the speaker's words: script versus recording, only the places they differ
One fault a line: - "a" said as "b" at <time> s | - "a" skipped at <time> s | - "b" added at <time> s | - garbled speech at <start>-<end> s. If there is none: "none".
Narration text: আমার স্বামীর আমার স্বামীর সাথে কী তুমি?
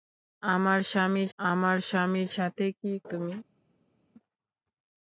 none